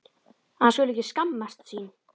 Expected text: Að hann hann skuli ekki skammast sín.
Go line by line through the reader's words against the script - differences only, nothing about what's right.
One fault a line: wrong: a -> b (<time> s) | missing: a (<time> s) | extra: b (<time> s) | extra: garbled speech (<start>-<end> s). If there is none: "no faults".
missing: hann (0.8 s)